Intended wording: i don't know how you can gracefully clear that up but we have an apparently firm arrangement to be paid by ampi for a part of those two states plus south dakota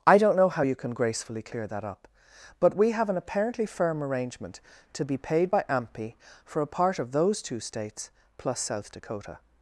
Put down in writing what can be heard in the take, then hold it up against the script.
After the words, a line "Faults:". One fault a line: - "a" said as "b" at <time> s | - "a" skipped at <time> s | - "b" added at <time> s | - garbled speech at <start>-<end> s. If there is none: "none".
i don't know how you can gracefully clear that up but we have an apparently firm arrangement to be paid by ampi for a part of those two states plus south dakota
Faults:
none